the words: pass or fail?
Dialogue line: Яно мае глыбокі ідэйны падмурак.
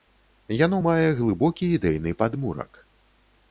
pass